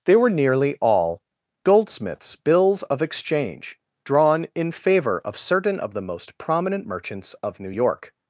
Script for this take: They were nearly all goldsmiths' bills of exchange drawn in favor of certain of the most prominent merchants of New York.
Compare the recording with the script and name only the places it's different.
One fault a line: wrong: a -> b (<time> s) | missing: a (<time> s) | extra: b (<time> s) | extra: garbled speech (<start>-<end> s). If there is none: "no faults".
no faults